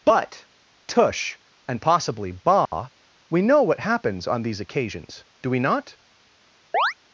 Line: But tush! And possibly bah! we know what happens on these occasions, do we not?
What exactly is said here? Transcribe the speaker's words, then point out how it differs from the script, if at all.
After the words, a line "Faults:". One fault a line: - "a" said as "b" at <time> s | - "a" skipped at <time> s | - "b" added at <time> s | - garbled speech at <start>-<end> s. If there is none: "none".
But tush! And possibly bah! we know what happens on these occasions, do we not?
Faults:
none